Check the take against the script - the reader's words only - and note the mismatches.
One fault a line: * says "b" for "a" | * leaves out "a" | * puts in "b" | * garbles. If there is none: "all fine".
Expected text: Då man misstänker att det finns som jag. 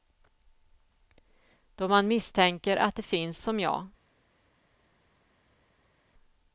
all fine